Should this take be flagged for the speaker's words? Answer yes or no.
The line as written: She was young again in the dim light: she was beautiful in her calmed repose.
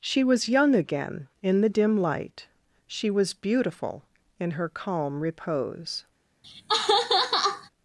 yes